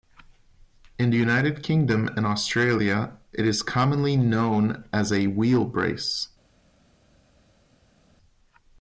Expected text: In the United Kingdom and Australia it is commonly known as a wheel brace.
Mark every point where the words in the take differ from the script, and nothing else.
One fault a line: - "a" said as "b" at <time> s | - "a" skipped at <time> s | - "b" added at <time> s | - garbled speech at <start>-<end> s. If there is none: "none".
none